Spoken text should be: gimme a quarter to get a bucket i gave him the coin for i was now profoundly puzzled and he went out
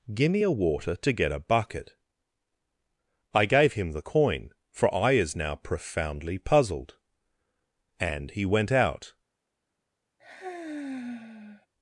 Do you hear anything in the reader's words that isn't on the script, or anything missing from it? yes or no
yes